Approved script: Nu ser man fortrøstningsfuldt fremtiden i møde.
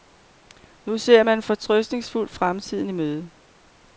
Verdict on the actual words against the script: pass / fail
pass